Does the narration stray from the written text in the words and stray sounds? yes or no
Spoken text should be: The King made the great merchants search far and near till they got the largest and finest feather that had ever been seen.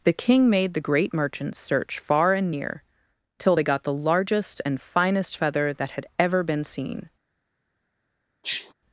yes